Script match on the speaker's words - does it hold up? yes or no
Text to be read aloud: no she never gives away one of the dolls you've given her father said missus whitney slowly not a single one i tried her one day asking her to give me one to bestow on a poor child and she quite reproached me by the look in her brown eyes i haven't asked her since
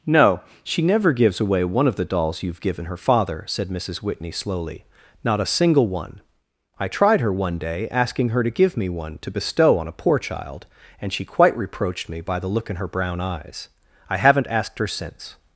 yes